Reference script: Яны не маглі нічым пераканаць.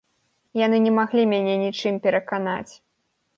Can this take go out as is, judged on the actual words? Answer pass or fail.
fail